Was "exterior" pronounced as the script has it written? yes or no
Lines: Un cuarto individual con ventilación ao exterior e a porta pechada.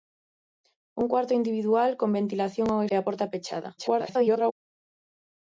no